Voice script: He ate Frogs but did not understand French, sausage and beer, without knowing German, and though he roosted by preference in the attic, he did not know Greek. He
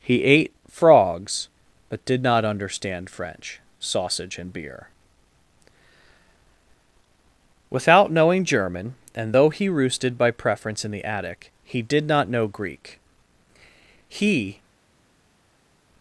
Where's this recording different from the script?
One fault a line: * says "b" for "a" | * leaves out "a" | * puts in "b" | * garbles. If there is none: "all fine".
all fine